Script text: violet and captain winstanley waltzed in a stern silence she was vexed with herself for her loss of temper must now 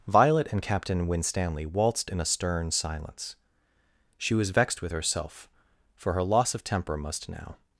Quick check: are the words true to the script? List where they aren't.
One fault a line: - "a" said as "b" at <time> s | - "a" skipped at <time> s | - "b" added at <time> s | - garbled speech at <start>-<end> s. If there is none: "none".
none